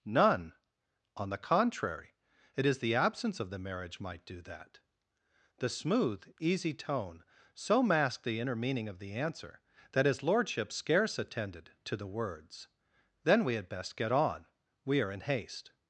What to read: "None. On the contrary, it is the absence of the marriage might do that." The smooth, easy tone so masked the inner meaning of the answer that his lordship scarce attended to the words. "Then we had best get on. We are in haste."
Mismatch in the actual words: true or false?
false